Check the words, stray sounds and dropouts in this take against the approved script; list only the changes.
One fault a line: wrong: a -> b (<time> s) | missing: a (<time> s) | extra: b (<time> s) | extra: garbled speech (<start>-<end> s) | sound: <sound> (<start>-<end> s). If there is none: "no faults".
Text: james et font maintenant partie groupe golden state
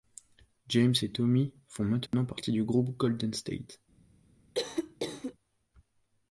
extra: tommy (1.1 s)
sound: dropout (2.1-2.1 s)
extra: du (2.5 s)
sound: cough (4.5-5.3 s)